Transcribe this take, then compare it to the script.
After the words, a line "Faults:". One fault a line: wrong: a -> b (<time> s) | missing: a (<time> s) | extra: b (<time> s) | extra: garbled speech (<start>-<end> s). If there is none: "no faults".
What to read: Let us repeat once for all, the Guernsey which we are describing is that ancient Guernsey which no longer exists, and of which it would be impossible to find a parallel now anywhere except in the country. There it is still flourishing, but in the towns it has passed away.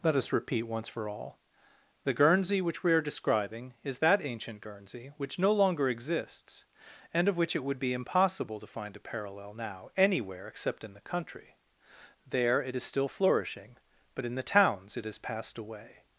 Let us repeat once for all, the Guernsey which we are describing is that ancient Guernsey which no longer exists, and of which it would be impossible to find a parallel now anywhere except in the country. There it is still flourishing, but in the towns it has passed away.
Faults:
no faults